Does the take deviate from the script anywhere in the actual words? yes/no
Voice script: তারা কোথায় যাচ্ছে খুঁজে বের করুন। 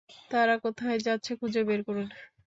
no